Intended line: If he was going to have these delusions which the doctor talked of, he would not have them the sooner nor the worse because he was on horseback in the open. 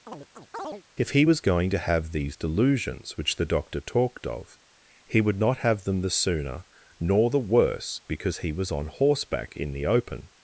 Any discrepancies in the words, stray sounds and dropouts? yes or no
yes